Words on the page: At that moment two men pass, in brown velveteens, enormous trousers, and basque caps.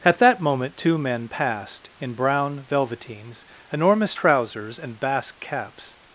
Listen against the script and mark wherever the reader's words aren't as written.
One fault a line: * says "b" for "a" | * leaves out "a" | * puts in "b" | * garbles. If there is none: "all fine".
* says "passed" for "pass"